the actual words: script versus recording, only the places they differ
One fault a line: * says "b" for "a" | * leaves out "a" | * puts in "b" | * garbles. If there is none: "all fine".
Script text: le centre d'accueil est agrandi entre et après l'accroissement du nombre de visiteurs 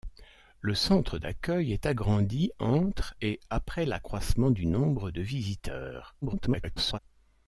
* garbles